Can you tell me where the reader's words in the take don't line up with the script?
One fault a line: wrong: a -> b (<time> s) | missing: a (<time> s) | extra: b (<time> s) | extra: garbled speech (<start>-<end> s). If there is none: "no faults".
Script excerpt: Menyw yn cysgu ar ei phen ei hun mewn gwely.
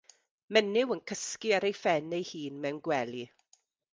no faults